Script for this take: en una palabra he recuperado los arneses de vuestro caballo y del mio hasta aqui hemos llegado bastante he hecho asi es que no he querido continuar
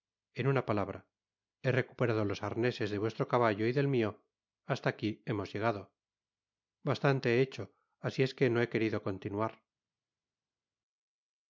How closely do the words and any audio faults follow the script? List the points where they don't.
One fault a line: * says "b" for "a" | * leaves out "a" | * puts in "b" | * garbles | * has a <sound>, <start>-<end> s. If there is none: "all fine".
all fine